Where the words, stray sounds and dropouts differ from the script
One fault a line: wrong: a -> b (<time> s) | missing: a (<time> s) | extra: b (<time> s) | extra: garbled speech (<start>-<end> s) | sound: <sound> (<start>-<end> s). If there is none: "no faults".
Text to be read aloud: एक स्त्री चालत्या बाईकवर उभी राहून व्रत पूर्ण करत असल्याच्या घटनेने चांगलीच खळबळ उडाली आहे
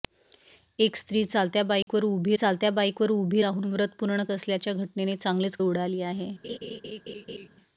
sound: dropout (1.8-1.9 s)
extra: चालत्या बाईकवर उभी (2.3 s)
missing: करत (4.2 s)
missing: खळबळ (5.6 s)
sound: laugh (6.4-7.5 s)